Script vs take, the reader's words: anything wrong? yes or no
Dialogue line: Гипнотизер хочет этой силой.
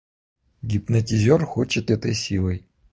no